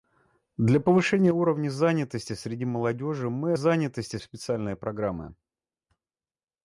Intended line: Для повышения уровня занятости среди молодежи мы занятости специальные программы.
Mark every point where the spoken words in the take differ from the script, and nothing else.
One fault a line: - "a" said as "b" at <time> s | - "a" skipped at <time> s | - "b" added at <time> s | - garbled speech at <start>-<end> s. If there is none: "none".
none